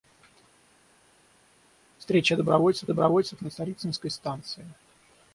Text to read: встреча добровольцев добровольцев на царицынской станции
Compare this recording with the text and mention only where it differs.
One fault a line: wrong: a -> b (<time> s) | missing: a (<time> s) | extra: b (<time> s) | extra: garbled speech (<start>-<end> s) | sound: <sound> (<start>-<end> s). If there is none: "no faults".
no faults